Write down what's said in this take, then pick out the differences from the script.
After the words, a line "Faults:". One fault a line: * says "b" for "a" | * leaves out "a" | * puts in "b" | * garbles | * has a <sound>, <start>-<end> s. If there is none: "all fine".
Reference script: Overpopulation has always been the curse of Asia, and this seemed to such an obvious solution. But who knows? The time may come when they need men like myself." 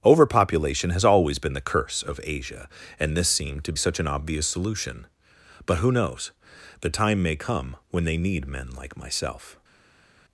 Overpopulation has always been the curse of Asia, and this seemed to such an obvious solution. But who knows? The time may come when they need men like myself."
Faults:
all fine